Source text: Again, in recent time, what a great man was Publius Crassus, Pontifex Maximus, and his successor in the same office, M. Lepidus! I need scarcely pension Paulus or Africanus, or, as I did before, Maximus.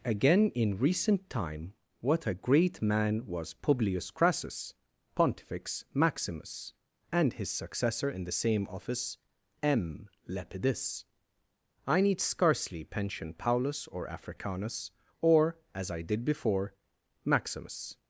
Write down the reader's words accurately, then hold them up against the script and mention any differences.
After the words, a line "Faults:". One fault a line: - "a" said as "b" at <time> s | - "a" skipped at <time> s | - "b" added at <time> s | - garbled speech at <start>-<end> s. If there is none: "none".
Again, in recent time, what a great man was Publius Crassus, Pontifex Maximus, and his successor in the same office, M. Lepidus! I need scarcely pension Paulus or Africanus, or, as I did before, Maximus.
Faults:
none